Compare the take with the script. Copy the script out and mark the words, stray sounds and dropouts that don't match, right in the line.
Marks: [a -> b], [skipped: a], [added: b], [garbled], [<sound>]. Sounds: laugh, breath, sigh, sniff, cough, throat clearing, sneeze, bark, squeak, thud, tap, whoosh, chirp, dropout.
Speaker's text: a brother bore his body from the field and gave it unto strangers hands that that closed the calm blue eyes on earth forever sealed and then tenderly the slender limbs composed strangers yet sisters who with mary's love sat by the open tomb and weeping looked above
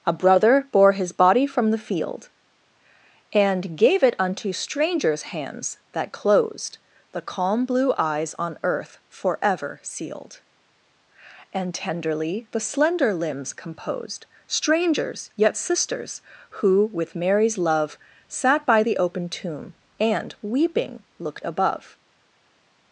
a brother bore his body from the field and gave it unto strangers hands that [skipped: that] closed the calm blue eyes on earth forever sealed and [skipped: then] tenderly the slender limbs composed strangers yet sisters who with mary's love sat by the open tomb and weeping looked above